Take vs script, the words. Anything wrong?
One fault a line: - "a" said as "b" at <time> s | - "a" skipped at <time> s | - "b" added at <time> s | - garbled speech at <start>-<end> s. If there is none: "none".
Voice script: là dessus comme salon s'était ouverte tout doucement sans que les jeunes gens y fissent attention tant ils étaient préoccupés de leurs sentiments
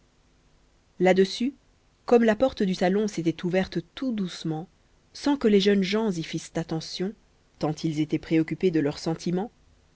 - "la porte du" added at 2.2 s